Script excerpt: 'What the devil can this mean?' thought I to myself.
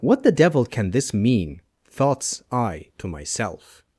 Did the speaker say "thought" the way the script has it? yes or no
no